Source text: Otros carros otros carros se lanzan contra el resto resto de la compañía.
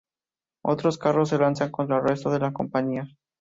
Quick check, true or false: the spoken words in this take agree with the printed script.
false